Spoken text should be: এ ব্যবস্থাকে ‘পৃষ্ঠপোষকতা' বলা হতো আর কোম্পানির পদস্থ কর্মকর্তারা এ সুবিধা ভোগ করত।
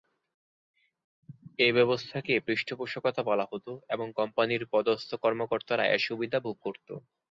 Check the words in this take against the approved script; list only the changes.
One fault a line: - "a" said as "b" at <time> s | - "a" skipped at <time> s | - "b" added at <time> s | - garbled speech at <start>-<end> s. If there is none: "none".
- "আর" said as "এবং" at 3.9 s